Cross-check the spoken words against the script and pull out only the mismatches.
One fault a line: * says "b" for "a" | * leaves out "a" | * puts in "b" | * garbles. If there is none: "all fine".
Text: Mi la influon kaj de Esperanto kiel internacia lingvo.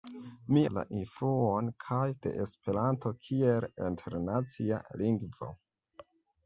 all fine